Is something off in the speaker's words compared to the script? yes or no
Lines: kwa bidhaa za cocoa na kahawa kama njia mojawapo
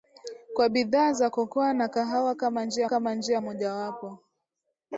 yes